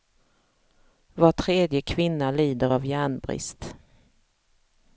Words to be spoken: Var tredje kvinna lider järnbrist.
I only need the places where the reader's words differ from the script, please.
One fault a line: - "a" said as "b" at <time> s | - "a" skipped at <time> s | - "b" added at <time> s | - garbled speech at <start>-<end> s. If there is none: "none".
- "av" added at 2.7 s